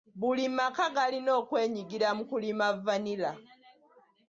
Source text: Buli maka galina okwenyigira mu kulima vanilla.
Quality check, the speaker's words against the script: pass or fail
pass